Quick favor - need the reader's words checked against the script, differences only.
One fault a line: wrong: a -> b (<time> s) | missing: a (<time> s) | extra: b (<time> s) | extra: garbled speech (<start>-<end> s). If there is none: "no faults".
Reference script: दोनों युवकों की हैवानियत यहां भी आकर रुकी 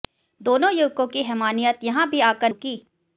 no faults